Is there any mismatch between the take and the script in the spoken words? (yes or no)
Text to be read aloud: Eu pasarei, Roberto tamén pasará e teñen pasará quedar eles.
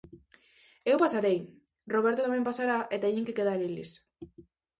yes